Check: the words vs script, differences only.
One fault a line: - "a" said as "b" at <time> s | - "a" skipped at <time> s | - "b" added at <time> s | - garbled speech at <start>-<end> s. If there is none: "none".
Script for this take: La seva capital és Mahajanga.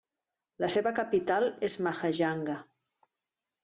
none